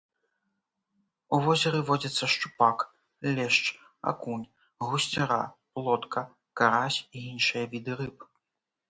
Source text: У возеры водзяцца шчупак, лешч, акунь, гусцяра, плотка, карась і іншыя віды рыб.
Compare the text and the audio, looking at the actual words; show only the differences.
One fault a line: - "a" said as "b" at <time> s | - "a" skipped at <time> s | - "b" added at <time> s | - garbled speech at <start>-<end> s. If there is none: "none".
none